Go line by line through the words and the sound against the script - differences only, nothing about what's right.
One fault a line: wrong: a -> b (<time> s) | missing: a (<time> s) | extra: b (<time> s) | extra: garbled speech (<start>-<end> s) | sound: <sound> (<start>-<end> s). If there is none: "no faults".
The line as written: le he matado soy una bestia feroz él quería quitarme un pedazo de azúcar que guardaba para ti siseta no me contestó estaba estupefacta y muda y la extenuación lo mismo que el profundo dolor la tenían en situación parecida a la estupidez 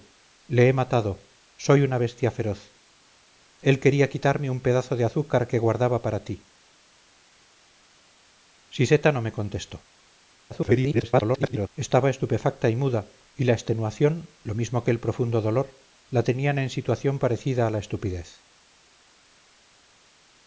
extra: garbled speech (10.5-11.7 s)